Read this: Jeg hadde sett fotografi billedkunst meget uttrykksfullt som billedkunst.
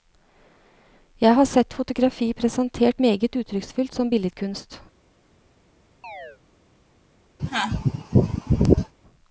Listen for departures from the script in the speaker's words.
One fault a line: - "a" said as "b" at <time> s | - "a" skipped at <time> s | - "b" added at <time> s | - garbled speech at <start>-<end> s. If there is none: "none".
- "hadde" said as "har" at 1.3 s
- "billedkunst" said as "presentert" at 2.3 s